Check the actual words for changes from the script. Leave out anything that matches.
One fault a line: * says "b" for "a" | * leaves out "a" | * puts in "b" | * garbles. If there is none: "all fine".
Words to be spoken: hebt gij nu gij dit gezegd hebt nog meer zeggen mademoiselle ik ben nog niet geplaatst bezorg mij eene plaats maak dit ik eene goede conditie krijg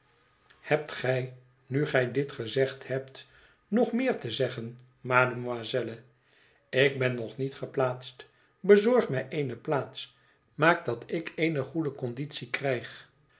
* puts in "te"
* says "dat" for "dit"